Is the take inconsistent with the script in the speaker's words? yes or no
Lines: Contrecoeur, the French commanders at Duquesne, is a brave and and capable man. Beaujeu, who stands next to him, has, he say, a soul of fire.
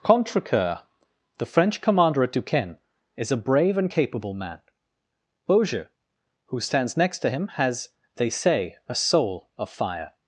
yes